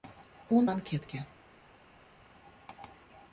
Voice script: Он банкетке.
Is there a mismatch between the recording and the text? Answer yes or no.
no